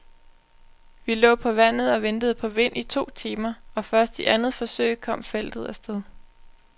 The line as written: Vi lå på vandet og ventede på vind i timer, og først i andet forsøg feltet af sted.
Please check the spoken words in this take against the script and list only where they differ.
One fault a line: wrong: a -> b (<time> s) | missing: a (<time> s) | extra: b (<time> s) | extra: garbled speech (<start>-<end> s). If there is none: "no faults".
extra: to (2.8 s)
extra: kom (5.0 s)